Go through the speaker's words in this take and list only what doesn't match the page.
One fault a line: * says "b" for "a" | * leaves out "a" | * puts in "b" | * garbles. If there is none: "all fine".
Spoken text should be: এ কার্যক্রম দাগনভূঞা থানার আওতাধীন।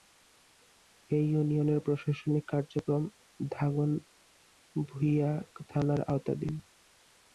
* puts in "ইউনিয়নের প্রশাসনিক"